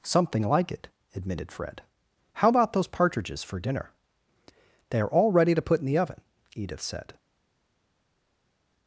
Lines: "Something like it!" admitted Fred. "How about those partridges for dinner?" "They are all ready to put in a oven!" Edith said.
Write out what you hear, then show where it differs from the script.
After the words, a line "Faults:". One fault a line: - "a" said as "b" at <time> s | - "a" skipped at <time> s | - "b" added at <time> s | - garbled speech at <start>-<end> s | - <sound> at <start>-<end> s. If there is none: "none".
"Something like it!" admitted Fred. "How about those partridges for dinner?" "They are all ready to put in the oven!" Edith said.
Faults:
- "a" said as "the" at 5.8 s